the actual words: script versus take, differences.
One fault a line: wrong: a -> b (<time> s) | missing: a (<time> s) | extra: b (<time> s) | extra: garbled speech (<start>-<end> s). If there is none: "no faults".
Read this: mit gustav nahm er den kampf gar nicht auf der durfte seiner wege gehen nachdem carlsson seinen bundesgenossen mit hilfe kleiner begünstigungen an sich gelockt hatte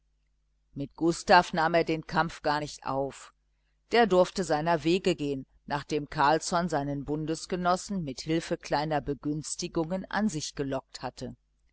no faults